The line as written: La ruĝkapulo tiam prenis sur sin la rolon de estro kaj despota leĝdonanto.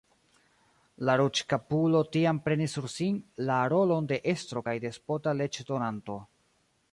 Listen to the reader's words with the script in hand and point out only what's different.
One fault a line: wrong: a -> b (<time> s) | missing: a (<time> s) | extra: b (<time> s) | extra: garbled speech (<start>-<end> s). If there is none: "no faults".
no faults